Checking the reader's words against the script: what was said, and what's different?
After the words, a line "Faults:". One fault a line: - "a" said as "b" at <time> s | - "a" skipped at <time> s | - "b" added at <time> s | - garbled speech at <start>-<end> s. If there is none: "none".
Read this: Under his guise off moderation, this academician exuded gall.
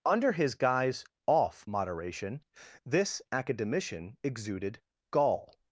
Under his guise off moderation, this academician exuded gall.
Faults:
none